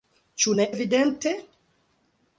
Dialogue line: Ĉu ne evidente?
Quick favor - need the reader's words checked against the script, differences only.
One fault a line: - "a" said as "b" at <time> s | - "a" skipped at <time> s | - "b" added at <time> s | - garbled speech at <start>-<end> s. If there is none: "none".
none